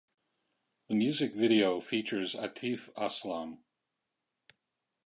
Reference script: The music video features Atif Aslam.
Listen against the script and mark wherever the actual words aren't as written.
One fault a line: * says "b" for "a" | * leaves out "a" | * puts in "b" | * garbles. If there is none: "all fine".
all fine